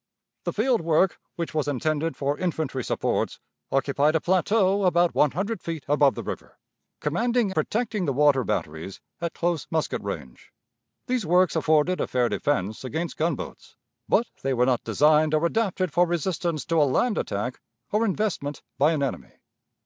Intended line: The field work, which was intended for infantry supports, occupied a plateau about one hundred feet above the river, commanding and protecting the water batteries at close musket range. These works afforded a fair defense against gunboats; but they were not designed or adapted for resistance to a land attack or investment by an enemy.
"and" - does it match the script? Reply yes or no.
no